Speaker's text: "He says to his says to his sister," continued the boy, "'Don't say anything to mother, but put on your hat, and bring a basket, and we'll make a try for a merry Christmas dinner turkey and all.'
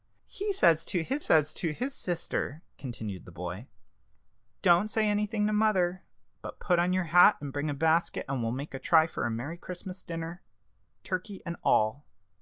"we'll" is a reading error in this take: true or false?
false